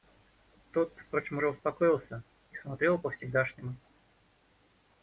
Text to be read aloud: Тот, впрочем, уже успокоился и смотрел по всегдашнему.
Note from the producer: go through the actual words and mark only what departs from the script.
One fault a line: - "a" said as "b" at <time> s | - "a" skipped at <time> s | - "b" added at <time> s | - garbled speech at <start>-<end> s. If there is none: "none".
none